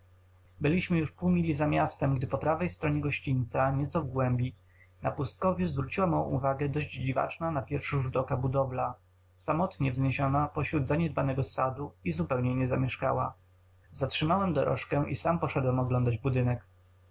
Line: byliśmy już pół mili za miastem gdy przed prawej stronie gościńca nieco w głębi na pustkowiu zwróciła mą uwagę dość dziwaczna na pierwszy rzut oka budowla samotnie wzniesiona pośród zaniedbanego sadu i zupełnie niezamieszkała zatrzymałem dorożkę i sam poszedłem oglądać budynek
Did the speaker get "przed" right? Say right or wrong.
wrong